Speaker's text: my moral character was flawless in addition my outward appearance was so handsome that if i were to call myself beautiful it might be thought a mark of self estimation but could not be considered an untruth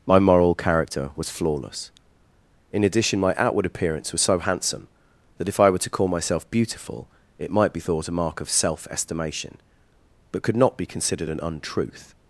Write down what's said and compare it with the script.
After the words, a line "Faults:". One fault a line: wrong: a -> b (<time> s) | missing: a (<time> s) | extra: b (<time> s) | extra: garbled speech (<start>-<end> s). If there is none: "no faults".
my moral character was flawless in addition my outward appearance was so handsome that if i were to call myself beautiful it might be thought a mark of self estimation but could not be considered an untruth
Faults:
no faults